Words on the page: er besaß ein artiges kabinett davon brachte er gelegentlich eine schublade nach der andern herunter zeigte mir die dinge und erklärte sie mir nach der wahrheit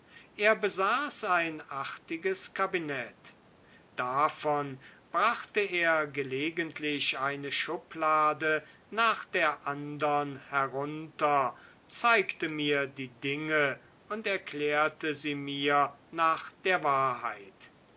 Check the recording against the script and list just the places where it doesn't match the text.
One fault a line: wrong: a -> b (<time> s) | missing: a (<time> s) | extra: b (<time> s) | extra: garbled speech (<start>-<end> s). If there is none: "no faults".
no faults